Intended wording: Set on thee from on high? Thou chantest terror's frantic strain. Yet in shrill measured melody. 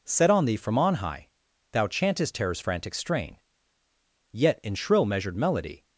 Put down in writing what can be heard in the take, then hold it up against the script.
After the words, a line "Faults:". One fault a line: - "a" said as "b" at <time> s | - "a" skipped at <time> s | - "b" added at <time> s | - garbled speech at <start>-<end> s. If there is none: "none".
Set on thee from on high? Thou chantest terror's frantic strain. Yet in shrill measured melody.
Faults:
none